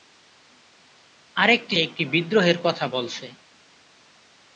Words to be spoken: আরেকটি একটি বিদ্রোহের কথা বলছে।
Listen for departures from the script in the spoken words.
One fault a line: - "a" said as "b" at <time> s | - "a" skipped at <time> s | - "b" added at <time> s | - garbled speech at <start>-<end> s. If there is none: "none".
none